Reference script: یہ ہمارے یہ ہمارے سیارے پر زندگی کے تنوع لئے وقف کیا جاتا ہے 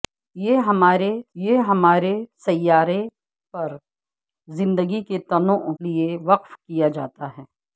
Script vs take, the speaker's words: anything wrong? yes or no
no